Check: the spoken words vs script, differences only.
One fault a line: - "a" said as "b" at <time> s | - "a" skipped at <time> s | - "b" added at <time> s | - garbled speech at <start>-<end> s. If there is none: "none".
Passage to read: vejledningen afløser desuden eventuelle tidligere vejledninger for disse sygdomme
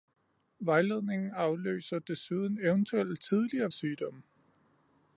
- "vejledninger for disse" skipped at 3.7 s